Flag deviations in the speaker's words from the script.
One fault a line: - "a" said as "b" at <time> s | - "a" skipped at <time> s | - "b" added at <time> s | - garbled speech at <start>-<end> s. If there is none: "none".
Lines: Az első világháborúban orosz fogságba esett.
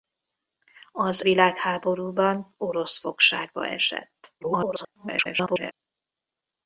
- "első" skipped at 1.2 s
- garbled speech at 4.4-5.7 s